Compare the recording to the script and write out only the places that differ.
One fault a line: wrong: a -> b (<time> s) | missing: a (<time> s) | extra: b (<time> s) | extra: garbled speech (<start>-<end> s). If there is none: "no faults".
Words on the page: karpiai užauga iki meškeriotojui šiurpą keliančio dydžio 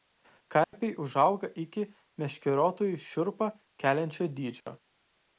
no faults